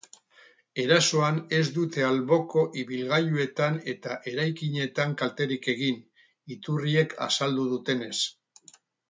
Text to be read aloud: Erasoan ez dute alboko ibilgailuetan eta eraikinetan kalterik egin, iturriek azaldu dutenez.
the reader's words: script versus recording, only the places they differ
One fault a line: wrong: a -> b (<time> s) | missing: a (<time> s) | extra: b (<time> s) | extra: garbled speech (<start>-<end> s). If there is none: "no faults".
no faults